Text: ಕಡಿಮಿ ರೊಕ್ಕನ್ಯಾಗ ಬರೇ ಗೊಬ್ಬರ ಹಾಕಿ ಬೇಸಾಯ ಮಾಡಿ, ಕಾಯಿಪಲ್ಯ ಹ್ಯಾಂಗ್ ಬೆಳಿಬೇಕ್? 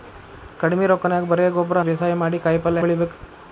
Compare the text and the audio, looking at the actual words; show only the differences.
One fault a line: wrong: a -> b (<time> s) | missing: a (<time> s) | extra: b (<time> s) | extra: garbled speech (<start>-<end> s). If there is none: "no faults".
missing: ಹಾಕಿ (1.8 s)
missing: ಹ್ಯಾಂಗ್ (2.8 s)